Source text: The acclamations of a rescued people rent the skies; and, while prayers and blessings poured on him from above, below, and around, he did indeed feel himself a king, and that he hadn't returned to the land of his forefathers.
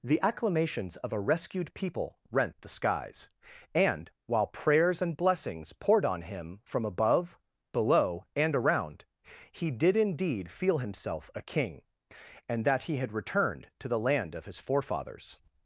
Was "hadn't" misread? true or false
true